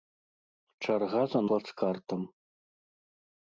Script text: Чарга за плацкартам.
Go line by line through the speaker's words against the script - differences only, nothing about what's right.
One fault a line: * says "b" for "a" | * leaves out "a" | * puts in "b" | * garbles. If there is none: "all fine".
all fine